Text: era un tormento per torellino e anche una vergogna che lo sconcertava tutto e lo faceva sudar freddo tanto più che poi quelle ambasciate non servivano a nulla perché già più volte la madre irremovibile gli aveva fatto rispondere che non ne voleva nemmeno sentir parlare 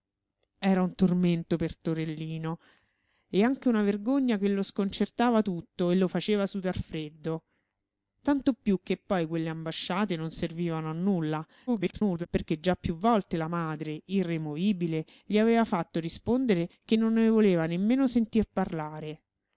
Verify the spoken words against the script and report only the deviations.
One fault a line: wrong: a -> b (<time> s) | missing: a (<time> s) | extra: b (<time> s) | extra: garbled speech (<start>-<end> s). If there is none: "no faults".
extra: garbled speech (11.7-12.3 s)